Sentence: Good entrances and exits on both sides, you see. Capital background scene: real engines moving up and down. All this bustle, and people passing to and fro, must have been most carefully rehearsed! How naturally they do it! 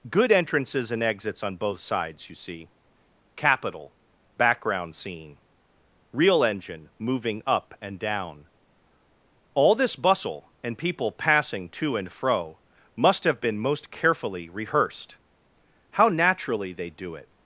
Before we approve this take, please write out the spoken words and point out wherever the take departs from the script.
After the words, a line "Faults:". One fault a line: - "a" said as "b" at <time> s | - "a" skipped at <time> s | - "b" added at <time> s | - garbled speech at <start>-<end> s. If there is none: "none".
Good entrances and exits on both sides, you see. Capital background scene: real engine moving up and down. All this bustle, and people passing to and fro, must have been most carefully rehearsed! How naturally they do it!
Faults:
- "engines" said as "engine" at 6.4 s